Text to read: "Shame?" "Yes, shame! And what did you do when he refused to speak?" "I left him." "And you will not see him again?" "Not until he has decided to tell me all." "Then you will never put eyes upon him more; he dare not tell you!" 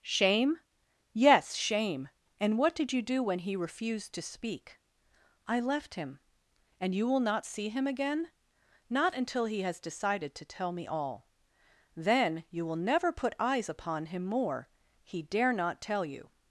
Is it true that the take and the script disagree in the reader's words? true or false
false